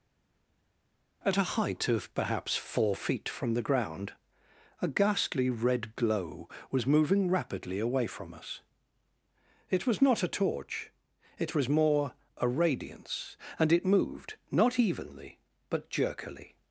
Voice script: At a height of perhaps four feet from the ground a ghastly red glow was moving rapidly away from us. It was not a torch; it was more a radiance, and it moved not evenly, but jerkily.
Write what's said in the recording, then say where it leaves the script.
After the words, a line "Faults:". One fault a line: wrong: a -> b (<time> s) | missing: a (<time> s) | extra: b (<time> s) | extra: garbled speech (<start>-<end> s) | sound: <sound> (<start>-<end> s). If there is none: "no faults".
At a height of perhaps four feet from the ground a ghastly red glow was moving rapidly away from us. It was not a torch; it was more a radiance, and it moved not evenly, but jerkily.
Faults:
no faults